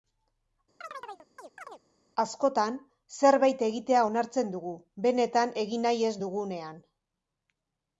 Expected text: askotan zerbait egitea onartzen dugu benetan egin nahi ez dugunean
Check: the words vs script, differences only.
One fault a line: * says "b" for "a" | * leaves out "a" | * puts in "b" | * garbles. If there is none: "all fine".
all fine